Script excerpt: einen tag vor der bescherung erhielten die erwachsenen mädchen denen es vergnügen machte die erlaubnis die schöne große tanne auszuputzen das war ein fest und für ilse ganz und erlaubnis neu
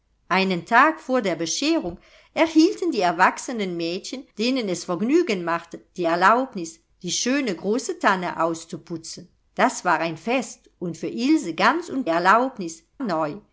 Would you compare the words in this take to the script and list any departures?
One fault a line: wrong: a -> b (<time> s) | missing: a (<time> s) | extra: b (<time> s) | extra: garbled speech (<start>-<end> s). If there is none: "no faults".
no faults